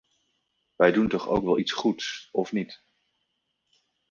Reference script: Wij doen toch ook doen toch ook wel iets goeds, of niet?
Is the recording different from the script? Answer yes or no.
yes